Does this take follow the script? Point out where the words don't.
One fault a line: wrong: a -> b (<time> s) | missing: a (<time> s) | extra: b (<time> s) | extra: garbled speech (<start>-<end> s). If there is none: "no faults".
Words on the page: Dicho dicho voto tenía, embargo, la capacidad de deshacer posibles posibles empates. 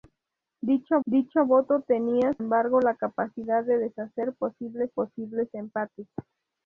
no faults